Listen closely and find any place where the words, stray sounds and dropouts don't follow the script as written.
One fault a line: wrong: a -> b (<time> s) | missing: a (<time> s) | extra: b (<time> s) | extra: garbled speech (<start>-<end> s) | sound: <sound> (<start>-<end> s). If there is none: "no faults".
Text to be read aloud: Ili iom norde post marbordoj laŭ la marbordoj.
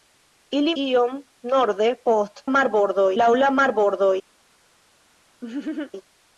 sound: laugh (5.4-5.9 s)